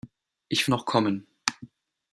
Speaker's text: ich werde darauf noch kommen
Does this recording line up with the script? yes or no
no